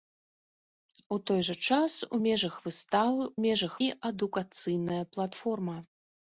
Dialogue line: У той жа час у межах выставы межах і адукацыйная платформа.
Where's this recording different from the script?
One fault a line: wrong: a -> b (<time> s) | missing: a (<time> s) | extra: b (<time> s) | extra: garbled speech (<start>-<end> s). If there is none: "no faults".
no faults